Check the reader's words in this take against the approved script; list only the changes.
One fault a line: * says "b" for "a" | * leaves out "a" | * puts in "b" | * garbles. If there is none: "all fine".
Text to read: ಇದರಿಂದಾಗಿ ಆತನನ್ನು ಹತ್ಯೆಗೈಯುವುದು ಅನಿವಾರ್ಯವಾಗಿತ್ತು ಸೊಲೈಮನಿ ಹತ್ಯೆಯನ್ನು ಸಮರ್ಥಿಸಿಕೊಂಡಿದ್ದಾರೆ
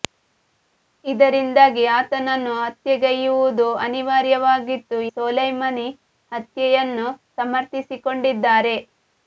all fine